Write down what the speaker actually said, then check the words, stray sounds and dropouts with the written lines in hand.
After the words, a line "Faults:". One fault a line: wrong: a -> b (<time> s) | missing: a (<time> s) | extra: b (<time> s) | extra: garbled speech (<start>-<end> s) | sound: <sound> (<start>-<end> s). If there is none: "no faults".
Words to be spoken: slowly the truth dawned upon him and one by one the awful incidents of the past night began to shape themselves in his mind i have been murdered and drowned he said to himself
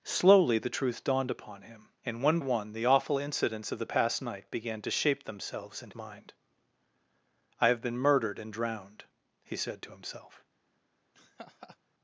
slowly the truth dawned upon him and one one the awful incidents of the past night began to shape themselves in mind i have been murdered and drowned he said to himself
Faults:
missing: by (2.4 s)
missing: his (5.9 s)
sound: laugh (11.1-11.8 s)